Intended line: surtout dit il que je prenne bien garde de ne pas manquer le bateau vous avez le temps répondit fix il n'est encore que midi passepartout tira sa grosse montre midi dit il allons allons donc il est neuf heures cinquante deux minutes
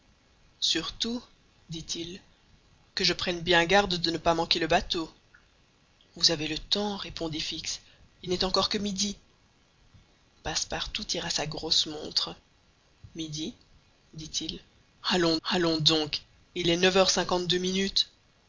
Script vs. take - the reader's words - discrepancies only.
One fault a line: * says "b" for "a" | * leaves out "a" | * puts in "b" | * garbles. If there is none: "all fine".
all fine